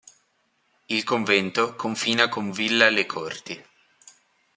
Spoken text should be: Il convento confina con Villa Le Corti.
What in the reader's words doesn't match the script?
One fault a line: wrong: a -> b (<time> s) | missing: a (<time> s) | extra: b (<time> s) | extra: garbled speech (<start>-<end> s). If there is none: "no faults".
no faults